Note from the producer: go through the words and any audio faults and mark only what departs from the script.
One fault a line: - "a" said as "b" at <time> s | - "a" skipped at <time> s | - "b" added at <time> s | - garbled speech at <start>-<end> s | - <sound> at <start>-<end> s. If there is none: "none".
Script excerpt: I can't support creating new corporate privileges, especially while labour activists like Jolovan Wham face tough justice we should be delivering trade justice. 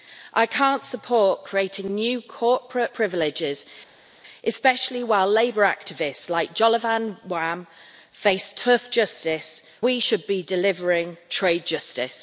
none